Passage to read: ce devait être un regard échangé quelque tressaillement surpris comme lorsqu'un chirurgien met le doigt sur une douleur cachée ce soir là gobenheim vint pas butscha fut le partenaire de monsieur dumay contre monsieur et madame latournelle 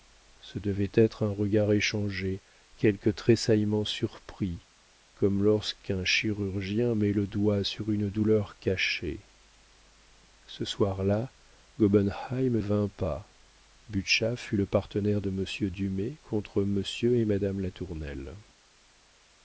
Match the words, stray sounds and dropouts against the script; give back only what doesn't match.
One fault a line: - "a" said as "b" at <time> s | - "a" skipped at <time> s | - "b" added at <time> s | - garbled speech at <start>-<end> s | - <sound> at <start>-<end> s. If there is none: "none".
none